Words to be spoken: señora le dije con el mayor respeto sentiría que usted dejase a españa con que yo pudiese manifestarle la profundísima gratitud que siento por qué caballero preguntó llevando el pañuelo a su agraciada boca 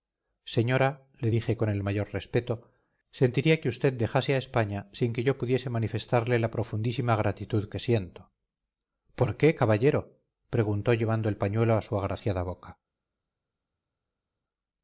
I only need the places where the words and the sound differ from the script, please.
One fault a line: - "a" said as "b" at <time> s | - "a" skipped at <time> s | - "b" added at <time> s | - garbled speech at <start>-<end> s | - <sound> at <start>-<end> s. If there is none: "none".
- "con" said as "sin" at 4.9 s